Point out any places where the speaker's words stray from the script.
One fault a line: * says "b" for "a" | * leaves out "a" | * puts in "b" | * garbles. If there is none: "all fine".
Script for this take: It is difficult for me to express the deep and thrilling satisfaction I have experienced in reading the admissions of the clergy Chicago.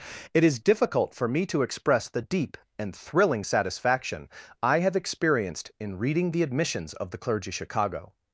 all fine